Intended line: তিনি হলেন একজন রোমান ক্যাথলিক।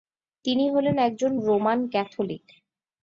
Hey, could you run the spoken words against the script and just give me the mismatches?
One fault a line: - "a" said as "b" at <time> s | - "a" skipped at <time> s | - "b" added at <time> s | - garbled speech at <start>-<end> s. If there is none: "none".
none